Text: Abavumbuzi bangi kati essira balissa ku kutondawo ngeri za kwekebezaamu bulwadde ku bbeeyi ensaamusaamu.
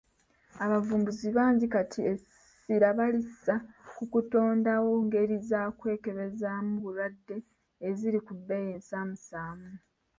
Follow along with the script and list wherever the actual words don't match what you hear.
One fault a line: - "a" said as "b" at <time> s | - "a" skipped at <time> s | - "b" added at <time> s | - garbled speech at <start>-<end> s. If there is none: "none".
- "eziri" added at 7.9 s